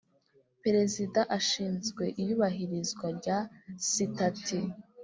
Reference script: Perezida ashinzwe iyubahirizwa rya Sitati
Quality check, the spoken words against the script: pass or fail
pass